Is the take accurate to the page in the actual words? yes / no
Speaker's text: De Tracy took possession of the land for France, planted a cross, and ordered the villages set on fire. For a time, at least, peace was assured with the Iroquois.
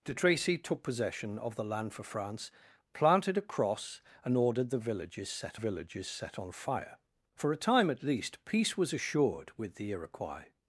no